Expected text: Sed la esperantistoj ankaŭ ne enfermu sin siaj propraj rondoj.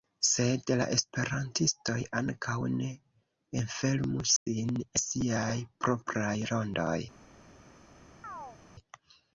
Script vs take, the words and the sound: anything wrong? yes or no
yes